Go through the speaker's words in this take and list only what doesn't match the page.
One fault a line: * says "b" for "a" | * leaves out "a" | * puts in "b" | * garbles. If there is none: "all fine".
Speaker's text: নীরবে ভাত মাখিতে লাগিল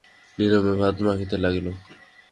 all fine